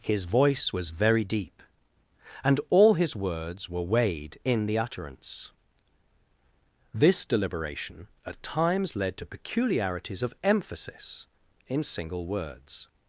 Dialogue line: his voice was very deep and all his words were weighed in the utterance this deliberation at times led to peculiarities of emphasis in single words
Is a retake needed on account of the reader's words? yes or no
no